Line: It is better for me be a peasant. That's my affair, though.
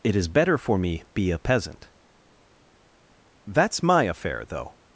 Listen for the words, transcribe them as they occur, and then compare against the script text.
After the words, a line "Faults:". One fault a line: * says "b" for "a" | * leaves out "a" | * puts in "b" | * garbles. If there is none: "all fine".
It is better for me be a peasant. That's my affair, though.
Faults:
all fine